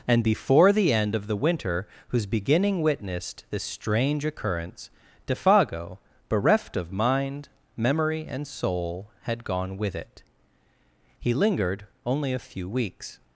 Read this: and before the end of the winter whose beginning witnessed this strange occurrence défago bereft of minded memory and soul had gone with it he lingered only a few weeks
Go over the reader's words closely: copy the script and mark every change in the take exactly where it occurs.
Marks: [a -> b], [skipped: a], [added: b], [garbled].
and before the end of the winter whose beginning witnessed this strange occurrence défago bereft of [minded -> mind] memory and soul had gone with it he lingered only a few weeks